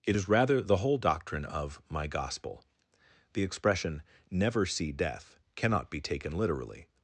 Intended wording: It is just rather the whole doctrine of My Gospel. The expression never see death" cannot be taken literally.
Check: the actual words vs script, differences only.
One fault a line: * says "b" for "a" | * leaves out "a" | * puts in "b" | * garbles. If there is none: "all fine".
* leaves out "just"